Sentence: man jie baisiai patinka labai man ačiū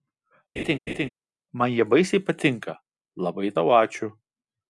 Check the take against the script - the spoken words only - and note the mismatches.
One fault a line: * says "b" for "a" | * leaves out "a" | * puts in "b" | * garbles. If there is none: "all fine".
* says "tau" for "man"